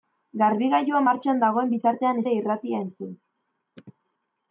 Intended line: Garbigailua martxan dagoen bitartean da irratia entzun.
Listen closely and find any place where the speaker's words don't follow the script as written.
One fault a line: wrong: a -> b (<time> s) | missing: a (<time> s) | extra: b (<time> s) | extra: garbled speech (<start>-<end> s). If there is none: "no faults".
no faults